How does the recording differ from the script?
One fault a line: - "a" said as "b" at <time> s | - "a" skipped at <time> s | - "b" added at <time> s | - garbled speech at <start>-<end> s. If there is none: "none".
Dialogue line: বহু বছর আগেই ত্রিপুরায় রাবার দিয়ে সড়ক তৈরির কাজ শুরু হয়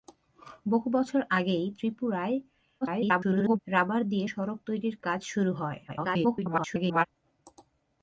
- garbled speech at 2.8-3.6 s
- garbled speech at 5.9-7.1 s